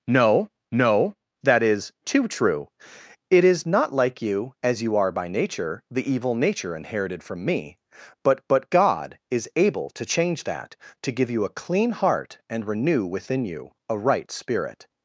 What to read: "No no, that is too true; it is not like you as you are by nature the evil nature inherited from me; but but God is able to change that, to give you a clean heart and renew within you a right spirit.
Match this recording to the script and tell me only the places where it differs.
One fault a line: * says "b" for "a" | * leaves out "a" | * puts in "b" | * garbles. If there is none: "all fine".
all fine